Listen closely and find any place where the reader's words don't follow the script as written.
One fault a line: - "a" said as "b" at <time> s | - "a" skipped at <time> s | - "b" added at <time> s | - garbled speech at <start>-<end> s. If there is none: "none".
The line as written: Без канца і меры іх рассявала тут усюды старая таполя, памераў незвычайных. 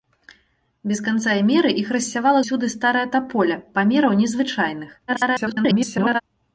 - "тут" skipped at 2.4 s
- garbled speech at 5.1-6.2 s